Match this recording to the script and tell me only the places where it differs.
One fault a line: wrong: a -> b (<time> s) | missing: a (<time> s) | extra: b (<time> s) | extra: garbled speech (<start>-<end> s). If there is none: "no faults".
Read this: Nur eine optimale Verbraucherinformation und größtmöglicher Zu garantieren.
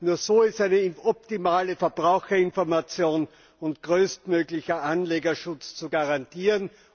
extra: so ist (0.2 s)
extra: Anlegerschutz (4.8 s)